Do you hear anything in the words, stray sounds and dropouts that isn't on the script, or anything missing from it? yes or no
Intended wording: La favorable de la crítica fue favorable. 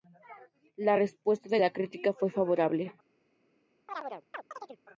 yes